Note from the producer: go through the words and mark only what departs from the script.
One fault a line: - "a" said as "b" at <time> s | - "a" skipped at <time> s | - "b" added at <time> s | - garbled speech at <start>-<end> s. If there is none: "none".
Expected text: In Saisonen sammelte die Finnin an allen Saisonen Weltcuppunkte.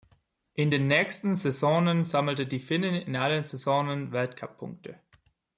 - "den nächsten" added at 0.7 s
- "an" said as "in" at 2.9 s